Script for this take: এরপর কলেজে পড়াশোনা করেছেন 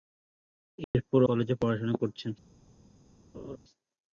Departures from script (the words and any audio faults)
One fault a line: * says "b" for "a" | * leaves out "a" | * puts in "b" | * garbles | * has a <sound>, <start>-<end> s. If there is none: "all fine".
* has a dropout, 0.8-0.9 s
* has a laugh, 3.3-3.6 s